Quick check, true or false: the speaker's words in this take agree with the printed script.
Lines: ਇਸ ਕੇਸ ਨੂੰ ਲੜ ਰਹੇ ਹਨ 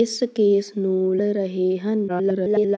false